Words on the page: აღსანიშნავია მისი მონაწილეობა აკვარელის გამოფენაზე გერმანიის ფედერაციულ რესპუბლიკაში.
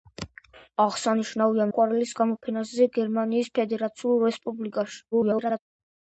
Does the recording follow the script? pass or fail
fail